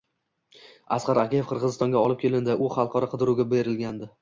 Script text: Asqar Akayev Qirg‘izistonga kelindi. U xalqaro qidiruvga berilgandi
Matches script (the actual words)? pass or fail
fail